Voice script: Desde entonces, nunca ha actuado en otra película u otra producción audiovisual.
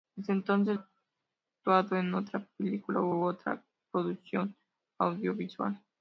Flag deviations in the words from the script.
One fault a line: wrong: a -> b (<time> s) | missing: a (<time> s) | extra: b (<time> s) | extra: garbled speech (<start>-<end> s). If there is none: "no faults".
missing: nunca (0.8 s)
extra: u (3.1 s)